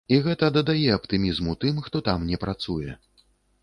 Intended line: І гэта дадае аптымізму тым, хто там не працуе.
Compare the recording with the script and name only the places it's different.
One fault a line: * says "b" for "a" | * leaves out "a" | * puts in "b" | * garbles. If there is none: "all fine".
all fine